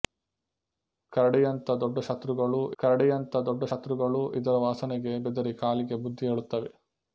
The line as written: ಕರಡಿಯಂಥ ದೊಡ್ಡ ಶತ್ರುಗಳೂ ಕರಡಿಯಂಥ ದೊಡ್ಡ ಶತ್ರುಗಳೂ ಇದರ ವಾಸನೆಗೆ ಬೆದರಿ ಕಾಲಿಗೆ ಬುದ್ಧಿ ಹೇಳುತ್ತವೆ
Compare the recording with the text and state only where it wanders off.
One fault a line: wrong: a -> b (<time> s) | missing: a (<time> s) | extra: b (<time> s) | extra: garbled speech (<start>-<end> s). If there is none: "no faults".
no faults